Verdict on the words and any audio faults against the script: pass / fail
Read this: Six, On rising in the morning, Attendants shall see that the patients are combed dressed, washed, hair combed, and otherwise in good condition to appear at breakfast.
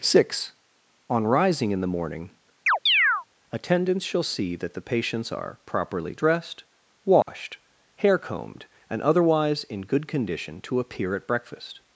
fail